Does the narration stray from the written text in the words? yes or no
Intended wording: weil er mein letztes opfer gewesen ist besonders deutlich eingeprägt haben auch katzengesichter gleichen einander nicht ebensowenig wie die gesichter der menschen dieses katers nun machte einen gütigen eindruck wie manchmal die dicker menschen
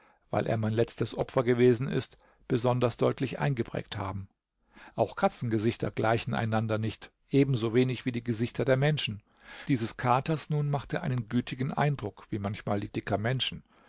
no